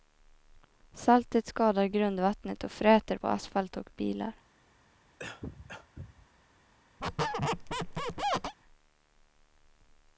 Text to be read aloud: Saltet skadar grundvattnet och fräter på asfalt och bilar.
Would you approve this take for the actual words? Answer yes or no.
yes